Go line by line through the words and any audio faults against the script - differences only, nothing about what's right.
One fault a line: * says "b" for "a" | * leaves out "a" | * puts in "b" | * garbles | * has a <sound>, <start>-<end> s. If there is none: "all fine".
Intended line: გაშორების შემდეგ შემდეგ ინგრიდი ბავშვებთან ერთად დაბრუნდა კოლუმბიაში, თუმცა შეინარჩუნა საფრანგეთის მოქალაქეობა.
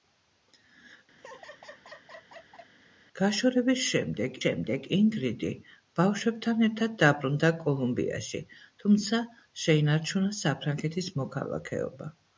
* has a laugh, 1.2-2.7 s